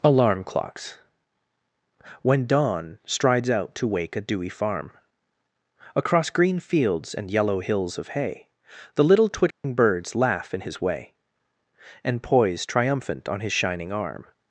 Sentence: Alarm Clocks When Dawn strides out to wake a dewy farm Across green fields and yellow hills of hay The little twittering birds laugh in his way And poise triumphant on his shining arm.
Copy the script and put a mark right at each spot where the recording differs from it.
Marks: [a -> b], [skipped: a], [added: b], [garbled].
Alarm Clocks When Dawn strides out to wake a dewy farm Across green fields and yellow hills of hay The little twittering birds laugh in his way And poise triumphant on his shining arm.